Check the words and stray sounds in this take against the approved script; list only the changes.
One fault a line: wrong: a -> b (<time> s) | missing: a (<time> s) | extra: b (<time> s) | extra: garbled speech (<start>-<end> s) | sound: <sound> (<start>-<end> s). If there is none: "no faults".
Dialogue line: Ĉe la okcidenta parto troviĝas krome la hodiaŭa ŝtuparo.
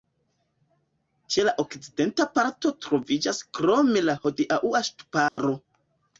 sound: dropout (5.3-5.4 s)